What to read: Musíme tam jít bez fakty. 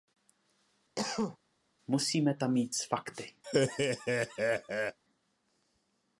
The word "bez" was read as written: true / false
false